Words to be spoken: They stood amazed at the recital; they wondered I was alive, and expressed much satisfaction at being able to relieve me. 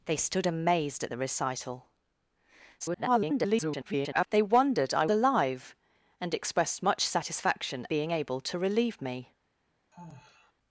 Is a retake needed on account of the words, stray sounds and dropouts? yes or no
yes